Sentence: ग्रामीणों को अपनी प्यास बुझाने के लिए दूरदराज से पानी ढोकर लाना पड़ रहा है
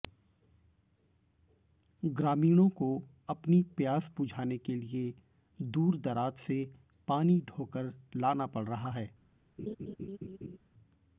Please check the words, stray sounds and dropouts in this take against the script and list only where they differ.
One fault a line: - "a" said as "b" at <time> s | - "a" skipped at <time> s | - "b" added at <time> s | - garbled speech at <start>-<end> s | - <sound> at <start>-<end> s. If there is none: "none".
- laugh at 9.6-10.6 s